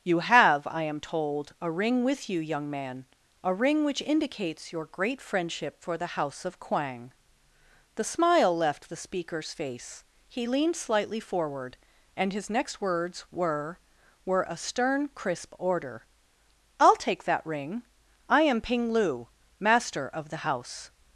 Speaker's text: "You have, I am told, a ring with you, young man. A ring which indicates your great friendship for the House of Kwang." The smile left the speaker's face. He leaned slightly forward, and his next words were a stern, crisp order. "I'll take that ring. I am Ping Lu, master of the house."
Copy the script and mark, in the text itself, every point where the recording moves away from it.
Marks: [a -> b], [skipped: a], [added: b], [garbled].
"You have, I am told, a ring with you, young man. A ring which indicates your great friendship for the House of Kwang." The smile left the speaker's face. He leaned slightly forward, and his next words were [added: were] a stern, crisp order. "I'll take that ring. I am Ping Lu, master of the house."